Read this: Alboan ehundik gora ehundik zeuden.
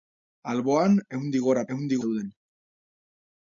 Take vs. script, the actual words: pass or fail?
pass